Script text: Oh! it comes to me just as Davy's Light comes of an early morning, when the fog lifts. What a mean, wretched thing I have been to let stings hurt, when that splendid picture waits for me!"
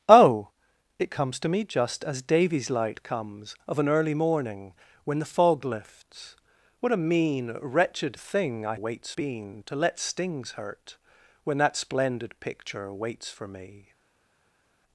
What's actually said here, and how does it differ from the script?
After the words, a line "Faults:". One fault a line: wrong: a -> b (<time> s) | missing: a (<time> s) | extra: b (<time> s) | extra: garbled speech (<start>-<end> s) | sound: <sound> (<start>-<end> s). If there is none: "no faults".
Oh! it comes to me just as Davy's Light comes of an early morning, when the fog lifts. What a mean, wretched thing I waits been to let stings hurt, when that splendid picture waits for me!"
Faults:
wrong: have -> waits (8.7 s)